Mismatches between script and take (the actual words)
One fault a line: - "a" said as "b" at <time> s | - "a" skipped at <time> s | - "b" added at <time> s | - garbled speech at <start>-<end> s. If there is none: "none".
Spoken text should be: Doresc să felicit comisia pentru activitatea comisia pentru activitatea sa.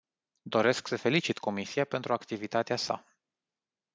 - "comisia pentru activitatea" skipped at 2.8 s